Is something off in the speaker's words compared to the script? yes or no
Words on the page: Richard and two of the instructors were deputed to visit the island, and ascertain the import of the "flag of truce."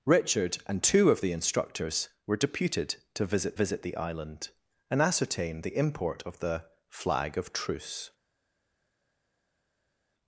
yes